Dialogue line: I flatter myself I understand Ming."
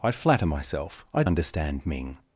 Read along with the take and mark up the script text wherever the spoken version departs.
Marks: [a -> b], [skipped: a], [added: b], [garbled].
I flatter myself I understand Ming."